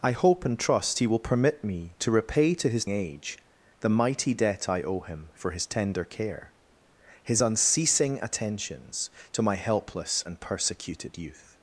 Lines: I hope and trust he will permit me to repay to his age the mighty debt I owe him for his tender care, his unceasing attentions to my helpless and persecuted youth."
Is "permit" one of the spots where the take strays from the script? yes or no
no